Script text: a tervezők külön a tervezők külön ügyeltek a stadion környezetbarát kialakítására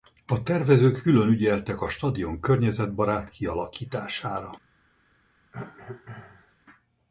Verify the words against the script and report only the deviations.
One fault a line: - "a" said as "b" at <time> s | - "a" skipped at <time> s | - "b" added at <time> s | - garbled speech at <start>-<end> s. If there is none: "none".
- "a tervezők külön" skipped at 1.3 s